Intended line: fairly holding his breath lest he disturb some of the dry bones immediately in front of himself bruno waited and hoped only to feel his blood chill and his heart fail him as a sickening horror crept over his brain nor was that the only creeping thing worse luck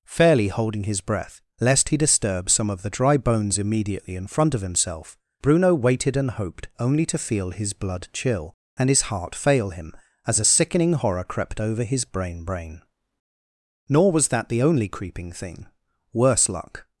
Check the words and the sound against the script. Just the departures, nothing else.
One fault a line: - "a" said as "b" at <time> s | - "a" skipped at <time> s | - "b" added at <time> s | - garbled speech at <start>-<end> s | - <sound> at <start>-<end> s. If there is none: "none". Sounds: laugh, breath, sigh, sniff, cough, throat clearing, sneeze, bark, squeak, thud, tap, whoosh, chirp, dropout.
- "brain" added at 12.4 s